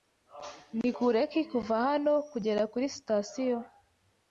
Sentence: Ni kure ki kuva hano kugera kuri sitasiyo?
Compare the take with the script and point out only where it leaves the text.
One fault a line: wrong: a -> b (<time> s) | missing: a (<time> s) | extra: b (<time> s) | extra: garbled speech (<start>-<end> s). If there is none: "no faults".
no faults